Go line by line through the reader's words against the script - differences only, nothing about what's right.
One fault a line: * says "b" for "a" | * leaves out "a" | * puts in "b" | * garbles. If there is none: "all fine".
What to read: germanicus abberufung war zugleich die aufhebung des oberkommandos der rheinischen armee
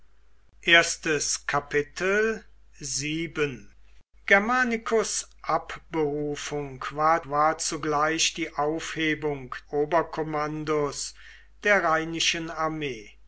* puts in "war"
* leaves out "des"